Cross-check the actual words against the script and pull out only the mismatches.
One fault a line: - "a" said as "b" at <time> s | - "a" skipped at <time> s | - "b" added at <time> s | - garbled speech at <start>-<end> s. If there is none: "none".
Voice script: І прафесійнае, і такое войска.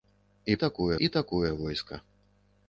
- "прафесійнае" said as "такое" at 0.5 s